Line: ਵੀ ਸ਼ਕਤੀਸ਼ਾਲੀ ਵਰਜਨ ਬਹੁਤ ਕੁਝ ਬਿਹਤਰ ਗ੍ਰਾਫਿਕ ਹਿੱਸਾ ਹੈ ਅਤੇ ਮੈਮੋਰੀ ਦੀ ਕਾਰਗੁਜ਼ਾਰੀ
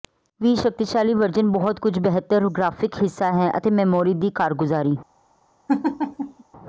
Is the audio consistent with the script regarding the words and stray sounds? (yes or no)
no